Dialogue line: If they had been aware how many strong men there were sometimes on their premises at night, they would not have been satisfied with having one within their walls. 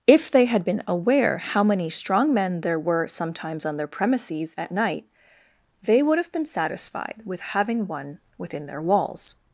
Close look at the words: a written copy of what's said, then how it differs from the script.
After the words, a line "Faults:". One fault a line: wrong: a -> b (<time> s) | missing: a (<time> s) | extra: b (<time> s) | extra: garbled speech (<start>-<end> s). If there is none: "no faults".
If they had been aware how many strong men there were sometimes on their premises at night, they would have been satisfied with having one within their walls.
Faults:
missing: not (6.2 s)